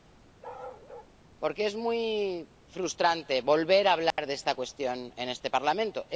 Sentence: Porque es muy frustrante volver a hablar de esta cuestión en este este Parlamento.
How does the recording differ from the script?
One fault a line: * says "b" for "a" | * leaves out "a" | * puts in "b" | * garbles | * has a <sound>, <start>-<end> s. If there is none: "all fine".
* has a bark, 0.4-1.1 s
* has a dropout, 4.1-4.2 s
* leaves out "este"